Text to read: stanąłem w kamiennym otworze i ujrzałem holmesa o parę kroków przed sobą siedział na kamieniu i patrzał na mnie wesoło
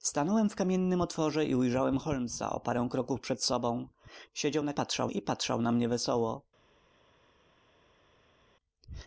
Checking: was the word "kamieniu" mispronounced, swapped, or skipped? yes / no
yes